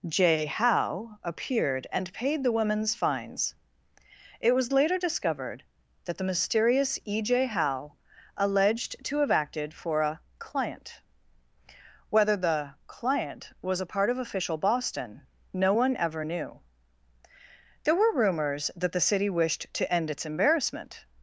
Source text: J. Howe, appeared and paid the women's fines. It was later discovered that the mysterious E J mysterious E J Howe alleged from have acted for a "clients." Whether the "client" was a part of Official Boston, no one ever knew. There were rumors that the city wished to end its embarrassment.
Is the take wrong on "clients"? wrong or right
wrong